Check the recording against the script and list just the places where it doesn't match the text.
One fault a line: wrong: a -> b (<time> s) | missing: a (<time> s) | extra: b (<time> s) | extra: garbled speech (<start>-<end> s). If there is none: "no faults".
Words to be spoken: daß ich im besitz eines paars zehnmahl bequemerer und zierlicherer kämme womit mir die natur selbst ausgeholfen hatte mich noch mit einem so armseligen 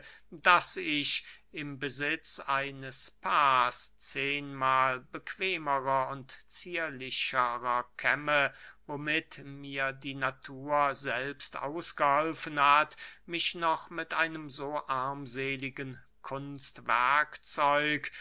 wrong: hatte -> hat (12.6 s)